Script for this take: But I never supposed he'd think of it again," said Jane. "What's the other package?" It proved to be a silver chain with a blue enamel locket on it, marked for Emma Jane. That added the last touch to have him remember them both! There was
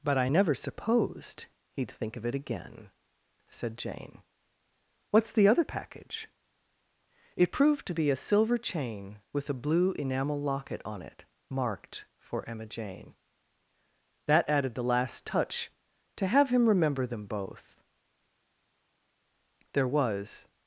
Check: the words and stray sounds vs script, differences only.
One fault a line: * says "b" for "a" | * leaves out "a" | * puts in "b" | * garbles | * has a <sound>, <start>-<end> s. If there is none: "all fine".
all fine